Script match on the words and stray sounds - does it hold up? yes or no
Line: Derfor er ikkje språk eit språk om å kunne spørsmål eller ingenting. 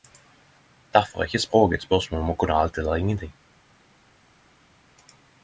no